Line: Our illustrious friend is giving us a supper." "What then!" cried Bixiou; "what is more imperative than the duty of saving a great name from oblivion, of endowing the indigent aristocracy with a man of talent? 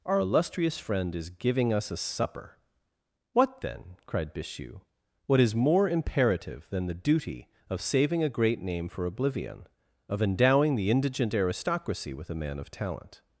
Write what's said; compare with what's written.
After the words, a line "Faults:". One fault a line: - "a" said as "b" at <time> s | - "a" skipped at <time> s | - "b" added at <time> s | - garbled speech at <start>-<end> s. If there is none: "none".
Our illustrious friend is giving us a supper." "What then!" cried Bixiou; "what is more imperative than the duty of saving a great name for oblivion, of endowing the indigent aristocracy with a man of talent?
Faults:
- "from" said as "for" at 8.9 s